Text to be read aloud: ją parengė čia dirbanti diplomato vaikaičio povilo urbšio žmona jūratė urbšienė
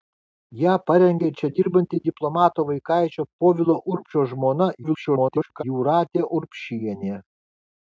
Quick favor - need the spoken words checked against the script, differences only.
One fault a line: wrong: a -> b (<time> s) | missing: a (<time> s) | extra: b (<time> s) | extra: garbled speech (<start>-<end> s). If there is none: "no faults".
extra: garbled speech (4.8-5.6 s)